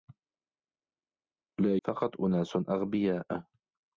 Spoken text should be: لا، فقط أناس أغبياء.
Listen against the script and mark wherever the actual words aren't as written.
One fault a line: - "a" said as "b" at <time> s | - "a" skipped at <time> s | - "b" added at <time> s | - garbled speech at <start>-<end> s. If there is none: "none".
none